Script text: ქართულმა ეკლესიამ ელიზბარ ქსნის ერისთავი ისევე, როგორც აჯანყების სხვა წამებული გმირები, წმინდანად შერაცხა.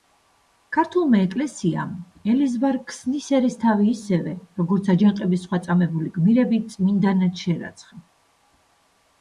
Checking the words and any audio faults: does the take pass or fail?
pass